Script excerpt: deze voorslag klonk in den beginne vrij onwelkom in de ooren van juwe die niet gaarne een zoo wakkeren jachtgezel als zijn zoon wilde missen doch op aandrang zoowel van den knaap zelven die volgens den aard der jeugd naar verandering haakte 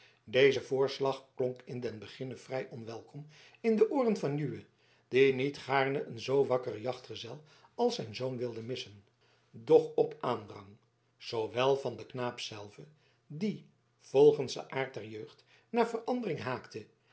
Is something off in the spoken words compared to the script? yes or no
no